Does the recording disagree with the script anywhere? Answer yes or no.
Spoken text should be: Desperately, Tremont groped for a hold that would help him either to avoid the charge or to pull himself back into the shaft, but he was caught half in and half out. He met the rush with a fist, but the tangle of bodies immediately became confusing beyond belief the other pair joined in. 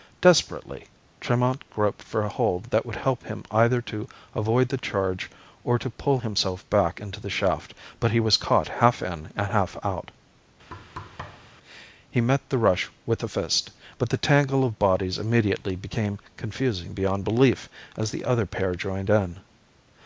yes